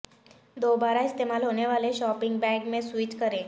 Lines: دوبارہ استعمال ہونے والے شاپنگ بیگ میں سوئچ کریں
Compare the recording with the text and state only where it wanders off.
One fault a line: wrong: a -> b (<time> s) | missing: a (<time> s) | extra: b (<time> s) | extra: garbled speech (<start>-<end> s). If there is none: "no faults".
no faults